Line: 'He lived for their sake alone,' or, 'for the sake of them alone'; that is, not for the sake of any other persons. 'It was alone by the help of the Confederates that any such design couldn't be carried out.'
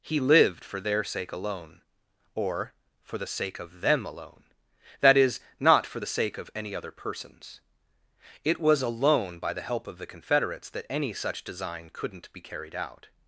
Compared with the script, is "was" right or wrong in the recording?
right